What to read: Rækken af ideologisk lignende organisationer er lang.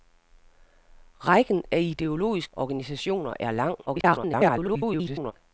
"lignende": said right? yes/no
no